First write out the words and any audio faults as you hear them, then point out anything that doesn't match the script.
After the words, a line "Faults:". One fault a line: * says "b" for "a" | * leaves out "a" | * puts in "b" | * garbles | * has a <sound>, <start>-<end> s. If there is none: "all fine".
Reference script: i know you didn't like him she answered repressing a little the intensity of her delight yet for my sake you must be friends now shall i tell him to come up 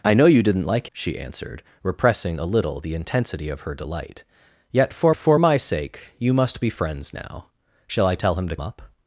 i know you didn't like she answered repressing a little the intensity of her delight yet for for my sake you must be friends now shall i tell him to up
Faults:
* leaves out "him"
* puts in "for"
* leaves out "come"